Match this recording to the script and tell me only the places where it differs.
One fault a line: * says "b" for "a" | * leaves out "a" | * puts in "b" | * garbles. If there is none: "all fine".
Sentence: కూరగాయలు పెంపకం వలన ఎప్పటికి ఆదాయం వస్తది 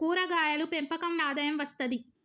* leaves out "వలన ఎప్పటికి"